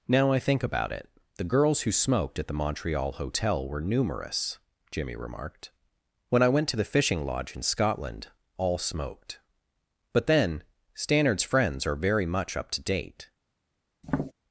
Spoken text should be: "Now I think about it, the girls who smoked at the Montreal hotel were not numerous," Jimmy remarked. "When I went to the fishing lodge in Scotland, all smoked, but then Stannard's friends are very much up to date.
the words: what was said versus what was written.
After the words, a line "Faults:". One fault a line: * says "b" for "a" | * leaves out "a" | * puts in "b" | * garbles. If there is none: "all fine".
"Now I think about it, the girls who smoked at the Montreal hotel were numerous," Jimmy remarked. "When I went to the fishing lodge in Scotland, all smoked, but then Stannard's friends are very much up to date.
Faults:
* leaves out "not"